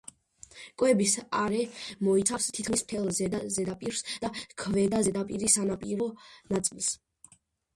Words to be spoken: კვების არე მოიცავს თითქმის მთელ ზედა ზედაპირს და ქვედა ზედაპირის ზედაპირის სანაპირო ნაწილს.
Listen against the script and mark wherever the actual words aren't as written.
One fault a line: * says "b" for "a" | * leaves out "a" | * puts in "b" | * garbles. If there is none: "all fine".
* leaves out "ზედაპირის"